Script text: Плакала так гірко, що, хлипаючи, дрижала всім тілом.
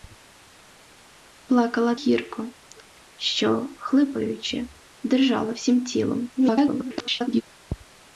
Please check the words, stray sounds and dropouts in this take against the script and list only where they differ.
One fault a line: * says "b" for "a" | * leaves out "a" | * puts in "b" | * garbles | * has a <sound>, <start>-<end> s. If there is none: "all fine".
* leaves out "так"
* garbles